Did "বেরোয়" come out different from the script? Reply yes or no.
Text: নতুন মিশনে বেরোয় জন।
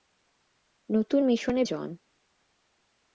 yes